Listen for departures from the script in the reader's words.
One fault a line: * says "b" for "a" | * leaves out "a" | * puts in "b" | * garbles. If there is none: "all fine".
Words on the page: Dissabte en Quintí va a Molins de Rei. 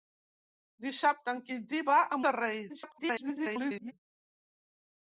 * leaves out "Molins"
* garbles